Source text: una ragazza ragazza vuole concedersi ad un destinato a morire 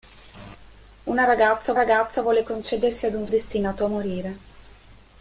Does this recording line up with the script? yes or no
yes